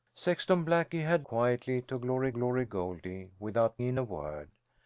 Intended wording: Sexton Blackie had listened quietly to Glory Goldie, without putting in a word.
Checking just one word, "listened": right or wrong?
wrong